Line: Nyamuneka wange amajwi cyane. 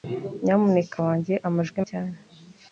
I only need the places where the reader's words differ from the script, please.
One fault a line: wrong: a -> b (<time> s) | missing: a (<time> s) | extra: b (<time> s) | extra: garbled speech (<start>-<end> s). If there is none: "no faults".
no faults